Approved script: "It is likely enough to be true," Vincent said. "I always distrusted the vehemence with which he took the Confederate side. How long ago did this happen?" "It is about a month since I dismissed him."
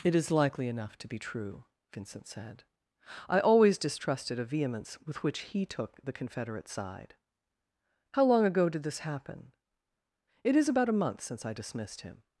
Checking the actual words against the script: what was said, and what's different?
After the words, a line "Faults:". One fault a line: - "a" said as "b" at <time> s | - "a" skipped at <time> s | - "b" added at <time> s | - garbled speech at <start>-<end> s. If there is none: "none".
"It is likely enough to be true," Vincent said. "I always distrusted a vehemence with which he took the Confederate side. How long ago did this happen?" "It is about a month since I dismissed him."
Faults:
- "the" said as "a" at 4.4 s